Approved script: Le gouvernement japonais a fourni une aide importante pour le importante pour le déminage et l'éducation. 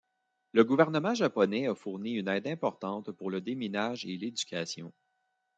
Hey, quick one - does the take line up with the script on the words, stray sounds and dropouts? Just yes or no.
no